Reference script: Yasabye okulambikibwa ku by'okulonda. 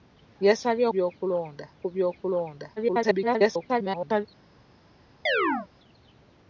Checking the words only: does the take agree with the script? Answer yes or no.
no